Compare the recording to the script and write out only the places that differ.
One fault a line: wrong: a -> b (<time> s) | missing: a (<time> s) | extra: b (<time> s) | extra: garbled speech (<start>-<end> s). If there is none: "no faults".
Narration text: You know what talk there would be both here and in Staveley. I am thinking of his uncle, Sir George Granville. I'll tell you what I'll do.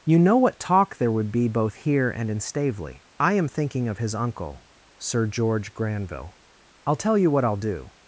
no faults